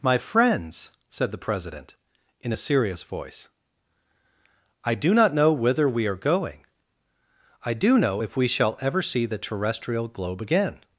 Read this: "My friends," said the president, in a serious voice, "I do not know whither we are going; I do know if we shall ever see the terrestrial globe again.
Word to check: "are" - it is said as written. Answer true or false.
true